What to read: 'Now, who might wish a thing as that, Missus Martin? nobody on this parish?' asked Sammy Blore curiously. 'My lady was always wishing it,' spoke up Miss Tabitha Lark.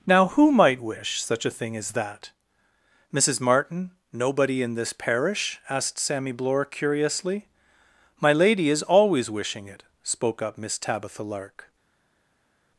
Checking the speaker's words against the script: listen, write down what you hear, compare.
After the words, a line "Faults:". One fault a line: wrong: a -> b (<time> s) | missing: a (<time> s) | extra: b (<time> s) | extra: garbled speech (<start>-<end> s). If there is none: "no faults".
'Now, who might wish such a thing as that, Missus Martin? nobody in this parish?' asked Sammy Blore curiously. 'My lady is always wishing it,' spoke up Miss Tabitha Lark.
Faults:
extra: such (1.2 s)
wrong: on -> in (4.6 s)
wrong: was -> is (8.7 s)